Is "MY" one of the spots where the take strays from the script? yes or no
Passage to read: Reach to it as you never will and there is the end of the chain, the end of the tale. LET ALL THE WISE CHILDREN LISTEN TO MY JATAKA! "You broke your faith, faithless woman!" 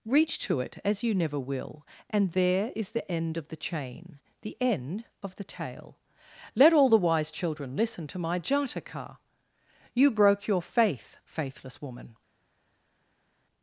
no